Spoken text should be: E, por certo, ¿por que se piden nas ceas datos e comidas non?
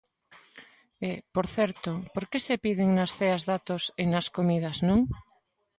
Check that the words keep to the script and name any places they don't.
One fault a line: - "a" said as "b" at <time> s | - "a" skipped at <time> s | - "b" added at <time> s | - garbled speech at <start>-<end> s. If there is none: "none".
- "nas" added at 4.1 s